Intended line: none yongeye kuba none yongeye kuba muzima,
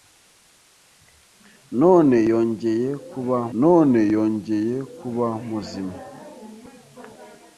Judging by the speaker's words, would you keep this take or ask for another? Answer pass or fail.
pass